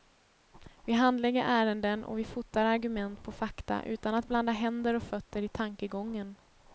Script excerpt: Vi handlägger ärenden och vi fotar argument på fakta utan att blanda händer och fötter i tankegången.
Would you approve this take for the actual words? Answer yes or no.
yes